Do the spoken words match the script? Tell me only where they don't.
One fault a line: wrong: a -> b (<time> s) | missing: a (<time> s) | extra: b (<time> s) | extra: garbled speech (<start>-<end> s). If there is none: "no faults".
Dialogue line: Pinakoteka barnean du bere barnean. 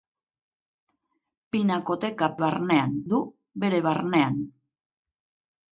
no faults